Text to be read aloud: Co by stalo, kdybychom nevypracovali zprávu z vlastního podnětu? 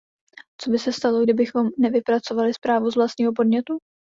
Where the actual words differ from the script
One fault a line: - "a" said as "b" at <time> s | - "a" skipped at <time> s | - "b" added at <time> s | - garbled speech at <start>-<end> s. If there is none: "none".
- "se" added at 0.8 s